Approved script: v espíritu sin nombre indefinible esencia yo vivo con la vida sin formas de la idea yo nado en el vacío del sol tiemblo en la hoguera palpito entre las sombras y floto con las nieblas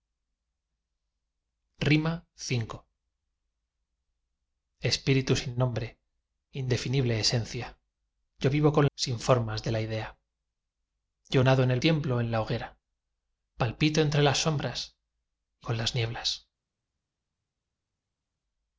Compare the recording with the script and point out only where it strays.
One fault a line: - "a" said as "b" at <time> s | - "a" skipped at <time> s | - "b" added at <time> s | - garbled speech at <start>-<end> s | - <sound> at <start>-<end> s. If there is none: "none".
- "la vida" skipped at 8.9 s
- "vacío del sol" skipped at 11.8 s
- "floto" skipped at 15.7 s